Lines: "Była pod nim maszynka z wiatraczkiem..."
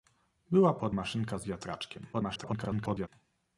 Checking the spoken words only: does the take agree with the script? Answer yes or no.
no